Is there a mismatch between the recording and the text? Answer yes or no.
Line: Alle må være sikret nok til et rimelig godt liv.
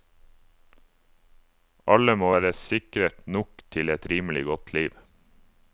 no